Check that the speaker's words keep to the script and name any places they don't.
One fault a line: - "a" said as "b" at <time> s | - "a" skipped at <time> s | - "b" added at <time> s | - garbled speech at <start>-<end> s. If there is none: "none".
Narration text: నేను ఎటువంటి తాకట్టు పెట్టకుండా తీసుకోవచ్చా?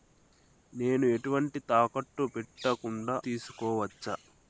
none